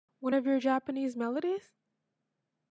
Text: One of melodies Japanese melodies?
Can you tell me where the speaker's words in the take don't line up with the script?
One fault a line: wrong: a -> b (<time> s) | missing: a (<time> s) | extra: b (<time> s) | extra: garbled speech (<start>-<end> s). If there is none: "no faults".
wrong: melodies -> your (0.4 s)